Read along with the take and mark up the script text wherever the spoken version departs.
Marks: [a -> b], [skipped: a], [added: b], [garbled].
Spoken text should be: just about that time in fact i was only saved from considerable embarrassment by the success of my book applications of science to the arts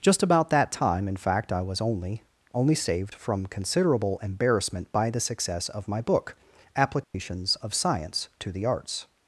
just about that time in fact i was only [added: only] saved from considerable embarrassment by the success of my book applications of science to the arts